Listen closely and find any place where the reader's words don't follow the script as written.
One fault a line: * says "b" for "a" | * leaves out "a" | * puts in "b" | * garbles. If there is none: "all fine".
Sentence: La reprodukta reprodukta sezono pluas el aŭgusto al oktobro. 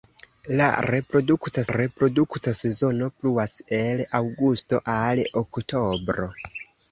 all fine